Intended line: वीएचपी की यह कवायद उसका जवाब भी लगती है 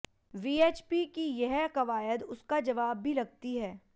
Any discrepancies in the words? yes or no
no